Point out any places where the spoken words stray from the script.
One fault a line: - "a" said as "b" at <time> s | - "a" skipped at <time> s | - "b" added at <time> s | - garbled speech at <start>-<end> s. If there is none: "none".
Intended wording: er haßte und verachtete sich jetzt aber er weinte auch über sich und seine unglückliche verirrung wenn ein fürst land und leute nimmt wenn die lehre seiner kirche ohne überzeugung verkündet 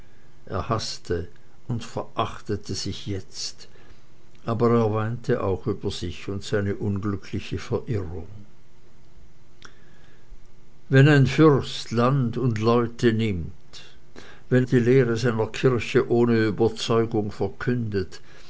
none